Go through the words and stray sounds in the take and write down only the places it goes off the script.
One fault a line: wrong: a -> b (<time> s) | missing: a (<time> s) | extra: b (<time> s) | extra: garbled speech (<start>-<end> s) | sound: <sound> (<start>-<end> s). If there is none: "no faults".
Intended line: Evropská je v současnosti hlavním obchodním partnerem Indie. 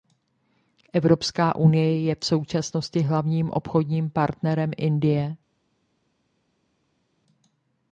extra: unie (1.6 s)